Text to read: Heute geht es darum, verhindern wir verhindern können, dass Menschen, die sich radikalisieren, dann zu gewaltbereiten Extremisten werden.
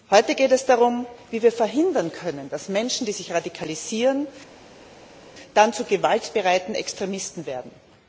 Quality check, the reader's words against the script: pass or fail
fail